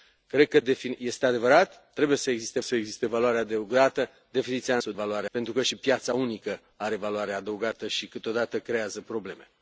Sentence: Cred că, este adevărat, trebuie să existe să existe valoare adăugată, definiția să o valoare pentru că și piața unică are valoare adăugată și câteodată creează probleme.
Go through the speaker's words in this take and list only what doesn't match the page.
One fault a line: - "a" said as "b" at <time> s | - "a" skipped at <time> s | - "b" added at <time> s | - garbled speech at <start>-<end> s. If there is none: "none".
none